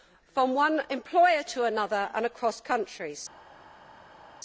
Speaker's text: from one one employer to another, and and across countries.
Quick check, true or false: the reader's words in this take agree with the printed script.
false